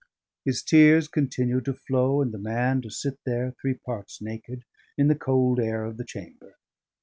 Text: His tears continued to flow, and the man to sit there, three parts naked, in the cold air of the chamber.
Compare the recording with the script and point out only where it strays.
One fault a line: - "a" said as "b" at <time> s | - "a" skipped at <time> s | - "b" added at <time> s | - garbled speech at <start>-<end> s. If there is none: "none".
none